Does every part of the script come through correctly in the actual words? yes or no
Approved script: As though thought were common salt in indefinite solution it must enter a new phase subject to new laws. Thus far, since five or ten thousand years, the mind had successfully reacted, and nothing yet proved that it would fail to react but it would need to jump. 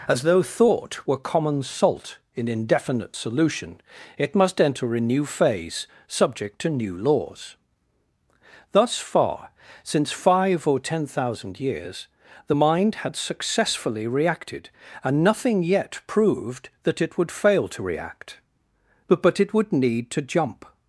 no